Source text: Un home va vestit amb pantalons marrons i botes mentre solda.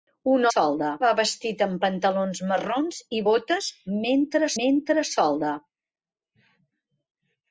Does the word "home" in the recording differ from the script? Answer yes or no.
yes